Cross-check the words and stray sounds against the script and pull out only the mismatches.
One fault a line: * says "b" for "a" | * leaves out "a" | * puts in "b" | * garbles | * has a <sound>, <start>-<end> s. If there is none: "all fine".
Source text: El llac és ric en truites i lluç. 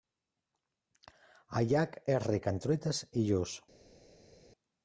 all fine